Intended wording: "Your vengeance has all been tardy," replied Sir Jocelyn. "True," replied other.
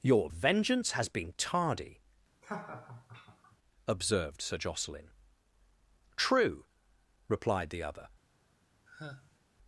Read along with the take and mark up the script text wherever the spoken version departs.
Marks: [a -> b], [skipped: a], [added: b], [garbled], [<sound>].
"Your vengeance has [skipped: all] been tardy," [laugh] [replied -> observed] Sir Jocelyn. "True," replied [added: the] other. [sigh]